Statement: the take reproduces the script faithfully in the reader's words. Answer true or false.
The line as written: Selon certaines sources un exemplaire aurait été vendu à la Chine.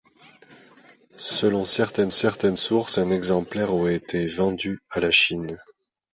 false